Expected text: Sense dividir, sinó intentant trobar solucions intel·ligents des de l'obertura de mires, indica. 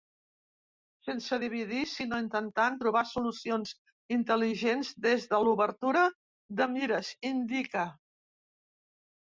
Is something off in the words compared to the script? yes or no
no